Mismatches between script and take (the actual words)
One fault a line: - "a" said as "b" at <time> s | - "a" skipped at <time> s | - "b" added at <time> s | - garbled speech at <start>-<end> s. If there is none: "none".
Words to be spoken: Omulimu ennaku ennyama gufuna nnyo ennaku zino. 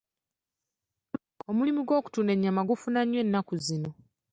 - "ennaku" said as "gw'okutunda" at 1.9 s